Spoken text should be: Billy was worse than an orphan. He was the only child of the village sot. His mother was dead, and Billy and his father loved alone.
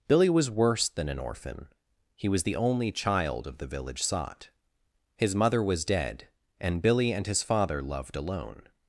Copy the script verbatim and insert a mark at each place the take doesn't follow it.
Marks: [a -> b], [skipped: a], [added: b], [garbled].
Billy was worse than an orphan. He was the only child of the village sot. His mother was dead, and Billy and his father loved alone.